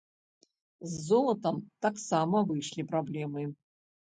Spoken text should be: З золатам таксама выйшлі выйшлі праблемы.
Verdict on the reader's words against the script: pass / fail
fail